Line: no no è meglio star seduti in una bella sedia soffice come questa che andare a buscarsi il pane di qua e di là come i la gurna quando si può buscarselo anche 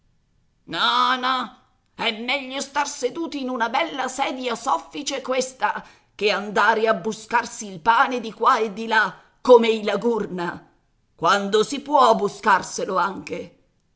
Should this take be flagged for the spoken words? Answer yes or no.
yes